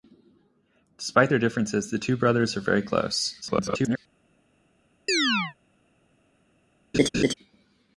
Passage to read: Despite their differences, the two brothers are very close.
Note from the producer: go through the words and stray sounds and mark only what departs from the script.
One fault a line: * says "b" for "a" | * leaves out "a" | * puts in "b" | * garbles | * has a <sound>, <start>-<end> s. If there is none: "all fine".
* garbles
* has a chirp, 5.1-5.5 s
* has a laugh, 6.9-7.3 s